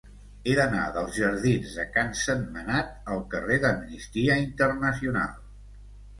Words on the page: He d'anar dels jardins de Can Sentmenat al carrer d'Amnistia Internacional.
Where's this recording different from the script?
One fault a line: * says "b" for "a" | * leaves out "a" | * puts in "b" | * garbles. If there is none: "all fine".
all fine